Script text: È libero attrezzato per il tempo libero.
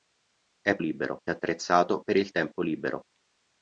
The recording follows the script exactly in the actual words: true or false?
true